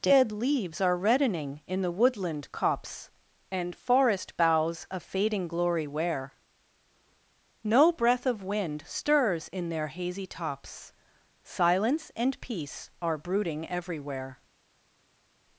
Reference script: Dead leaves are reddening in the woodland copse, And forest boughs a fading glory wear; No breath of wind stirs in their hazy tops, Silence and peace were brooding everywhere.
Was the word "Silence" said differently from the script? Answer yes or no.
no